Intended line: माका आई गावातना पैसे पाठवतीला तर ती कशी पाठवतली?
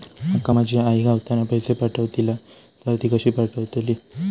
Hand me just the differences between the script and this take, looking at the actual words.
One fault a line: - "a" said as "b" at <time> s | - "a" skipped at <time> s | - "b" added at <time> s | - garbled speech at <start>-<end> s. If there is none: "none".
- "माझी" added at 0.5 s